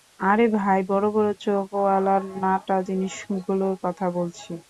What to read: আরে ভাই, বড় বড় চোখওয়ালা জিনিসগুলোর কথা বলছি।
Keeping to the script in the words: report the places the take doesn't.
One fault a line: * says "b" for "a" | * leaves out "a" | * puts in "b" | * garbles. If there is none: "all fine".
* puts in "নাটা"